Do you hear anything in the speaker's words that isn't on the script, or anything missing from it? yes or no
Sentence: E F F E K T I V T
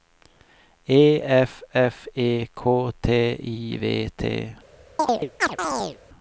no